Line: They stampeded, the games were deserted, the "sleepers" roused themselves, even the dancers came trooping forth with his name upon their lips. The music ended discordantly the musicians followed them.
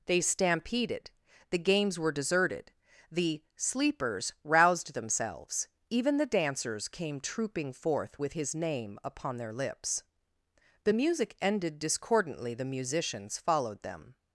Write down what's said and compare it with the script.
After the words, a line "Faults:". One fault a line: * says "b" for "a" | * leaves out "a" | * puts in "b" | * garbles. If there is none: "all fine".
They stampeded, the games were deserted, the "sleepers" roused themselves, even the dancers came trooping forth with his name upon their lips. The music ended discordantly the musicians followed them.
Faults:
all fine